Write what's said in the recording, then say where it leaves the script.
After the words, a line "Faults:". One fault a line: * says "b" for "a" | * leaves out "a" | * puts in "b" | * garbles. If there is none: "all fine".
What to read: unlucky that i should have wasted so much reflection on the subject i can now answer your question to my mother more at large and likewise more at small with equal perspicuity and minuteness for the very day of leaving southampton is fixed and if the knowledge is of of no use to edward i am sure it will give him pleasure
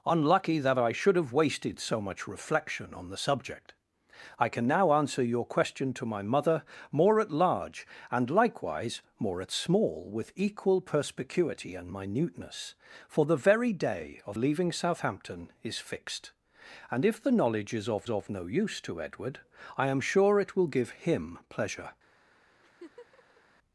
unlucky that i should have wasted so much reflection on the subject i can now answer your question to my mother more at large and likewise more at small with equal perspicuity and minuteness for the very day of leaving southampton is fixed and if the knowledge is of of no use to edward i am sure it will give him pleasure
Faults:
all fine